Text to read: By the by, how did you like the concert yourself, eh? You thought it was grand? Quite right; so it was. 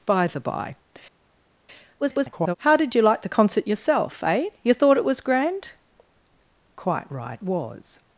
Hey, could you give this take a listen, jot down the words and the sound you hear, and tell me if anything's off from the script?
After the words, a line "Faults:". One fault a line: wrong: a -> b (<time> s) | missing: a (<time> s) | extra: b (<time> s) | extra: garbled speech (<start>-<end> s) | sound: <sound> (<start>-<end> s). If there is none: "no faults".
By the by, [garbled] how did you like the concert yourself, eh? You thought it was grand? Quite right; was.
Faults:
extra: garbled speech (2.0-2.6 s)
missing: so it (7.4 s)